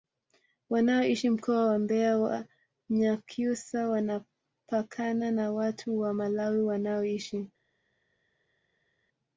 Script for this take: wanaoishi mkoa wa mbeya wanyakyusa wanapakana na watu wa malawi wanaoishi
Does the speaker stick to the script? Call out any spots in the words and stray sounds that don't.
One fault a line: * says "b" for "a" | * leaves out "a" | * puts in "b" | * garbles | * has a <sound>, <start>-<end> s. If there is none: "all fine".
all fine